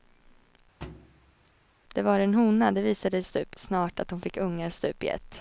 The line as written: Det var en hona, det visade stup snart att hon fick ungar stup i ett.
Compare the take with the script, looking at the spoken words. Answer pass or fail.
pass